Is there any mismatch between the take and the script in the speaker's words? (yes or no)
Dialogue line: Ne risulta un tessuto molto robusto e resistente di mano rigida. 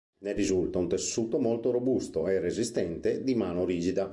no